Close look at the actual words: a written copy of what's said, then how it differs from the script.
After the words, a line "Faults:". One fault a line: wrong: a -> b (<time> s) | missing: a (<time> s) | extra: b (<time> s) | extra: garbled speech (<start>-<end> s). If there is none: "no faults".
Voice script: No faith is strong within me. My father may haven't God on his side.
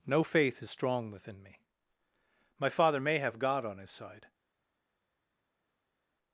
No faith is strong within me. My father may have God on his side.
Faults:
wrong: haven't -> have (3.2 s)